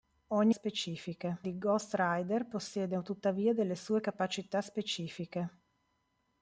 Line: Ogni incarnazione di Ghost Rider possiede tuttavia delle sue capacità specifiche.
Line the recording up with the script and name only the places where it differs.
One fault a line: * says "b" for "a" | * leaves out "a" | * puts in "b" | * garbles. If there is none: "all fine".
* says "specifiche" for "incarnazione"